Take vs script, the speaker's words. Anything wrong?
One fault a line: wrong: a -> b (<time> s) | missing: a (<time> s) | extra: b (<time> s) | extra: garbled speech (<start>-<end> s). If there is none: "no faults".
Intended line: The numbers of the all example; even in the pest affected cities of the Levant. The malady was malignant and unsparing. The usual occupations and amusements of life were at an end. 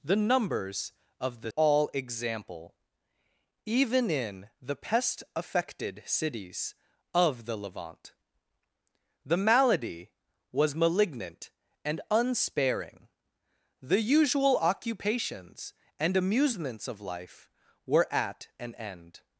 no faults